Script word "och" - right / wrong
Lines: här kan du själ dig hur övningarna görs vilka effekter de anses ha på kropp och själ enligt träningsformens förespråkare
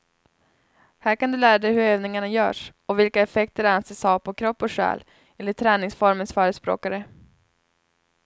right